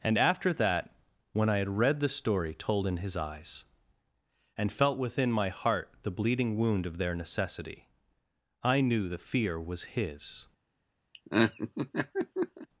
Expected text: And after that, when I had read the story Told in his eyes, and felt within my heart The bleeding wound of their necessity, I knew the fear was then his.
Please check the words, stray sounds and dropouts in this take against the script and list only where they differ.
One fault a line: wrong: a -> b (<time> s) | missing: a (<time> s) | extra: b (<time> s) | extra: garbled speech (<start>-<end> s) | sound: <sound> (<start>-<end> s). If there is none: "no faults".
missing: then (9.8 s)
sound: laugh (11.1-12.7 s)